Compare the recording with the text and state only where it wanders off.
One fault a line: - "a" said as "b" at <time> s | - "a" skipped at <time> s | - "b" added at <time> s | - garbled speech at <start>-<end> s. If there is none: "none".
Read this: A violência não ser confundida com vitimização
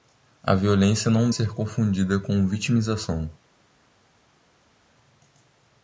none